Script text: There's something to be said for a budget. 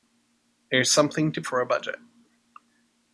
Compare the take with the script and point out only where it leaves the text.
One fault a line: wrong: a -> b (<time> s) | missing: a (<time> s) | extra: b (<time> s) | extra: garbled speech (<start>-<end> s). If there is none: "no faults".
missing: be said (1.4 s)